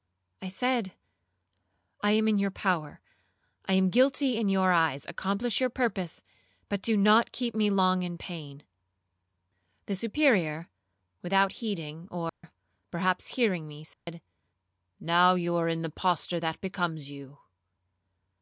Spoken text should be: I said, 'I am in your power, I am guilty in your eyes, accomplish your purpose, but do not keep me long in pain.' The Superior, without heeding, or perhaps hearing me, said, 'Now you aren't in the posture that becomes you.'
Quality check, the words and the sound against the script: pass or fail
fail